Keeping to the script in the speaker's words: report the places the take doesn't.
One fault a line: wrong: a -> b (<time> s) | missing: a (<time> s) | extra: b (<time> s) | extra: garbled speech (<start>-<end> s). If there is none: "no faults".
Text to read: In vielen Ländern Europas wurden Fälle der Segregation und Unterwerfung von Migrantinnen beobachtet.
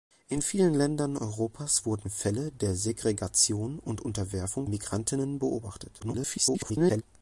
missing: von (4.7 s)
extra: garbled speech (6.0-7.0 s)